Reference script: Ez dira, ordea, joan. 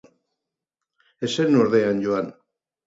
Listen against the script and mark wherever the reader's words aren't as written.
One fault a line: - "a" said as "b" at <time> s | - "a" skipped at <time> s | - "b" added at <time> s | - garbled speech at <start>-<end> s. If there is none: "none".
- "dira" said as "zen" at 1.4 s